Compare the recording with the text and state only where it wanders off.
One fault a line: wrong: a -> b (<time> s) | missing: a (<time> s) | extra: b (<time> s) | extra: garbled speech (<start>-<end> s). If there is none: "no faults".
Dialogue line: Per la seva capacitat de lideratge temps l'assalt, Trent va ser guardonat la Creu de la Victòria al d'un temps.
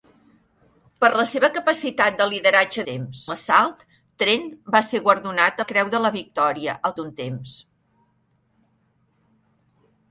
no faults